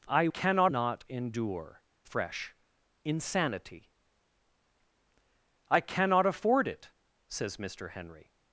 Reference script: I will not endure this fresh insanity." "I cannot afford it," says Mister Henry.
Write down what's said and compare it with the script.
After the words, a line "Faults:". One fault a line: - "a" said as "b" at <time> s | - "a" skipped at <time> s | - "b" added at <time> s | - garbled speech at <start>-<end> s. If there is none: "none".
I cannot not endure fresh insanity." "I cannot afford it," says Mister Henry.
Faults:
- "will" said as "cannot" at 0.3 s
- "this" skipped at 1.8 s